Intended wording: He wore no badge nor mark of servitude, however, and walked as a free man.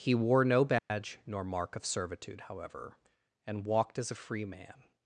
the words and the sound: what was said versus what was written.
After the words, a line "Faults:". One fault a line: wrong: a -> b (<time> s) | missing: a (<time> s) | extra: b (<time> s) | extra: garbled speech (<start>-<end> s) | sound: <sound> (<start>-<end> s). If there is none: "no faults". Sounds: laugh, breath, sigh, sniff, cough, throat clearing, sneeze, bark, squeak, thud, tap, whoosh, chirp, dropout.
He wore no badge nor mark of servitude, however, and walked as a free man.
Faults:
sound: dropout (0.8-0.9 s)